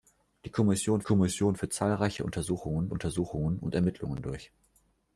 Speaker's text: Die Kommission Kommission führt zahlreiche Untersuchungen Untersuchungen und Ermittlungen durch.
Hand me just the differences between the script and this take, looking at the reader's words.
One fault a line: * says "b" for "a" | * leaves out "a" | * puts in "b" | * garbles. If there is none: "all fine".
all fine